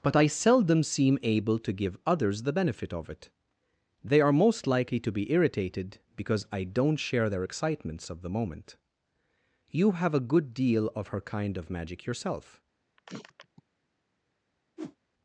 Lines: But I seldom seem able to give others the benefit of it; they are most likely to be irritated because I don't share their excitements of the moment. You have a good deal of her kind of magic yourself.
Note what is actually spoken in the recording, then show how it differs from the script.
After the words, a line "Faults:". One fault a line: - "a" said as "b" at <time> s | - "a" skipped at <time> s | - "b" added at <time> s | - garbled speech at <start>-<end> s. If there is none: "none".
But I seldom seem able to give others the benefit of it; they are most likely to be irritated because I don't share their excitements of the moment. You have a good deal of her kind of magic yourself.
Faults:
none